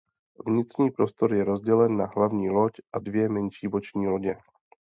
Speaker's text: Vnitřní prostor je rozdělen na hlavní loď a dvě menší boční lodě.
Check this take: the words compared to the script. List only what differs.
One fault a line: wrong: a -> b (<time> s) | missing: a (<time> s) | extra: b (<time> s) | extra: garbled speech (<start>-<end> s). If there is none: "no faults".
no faults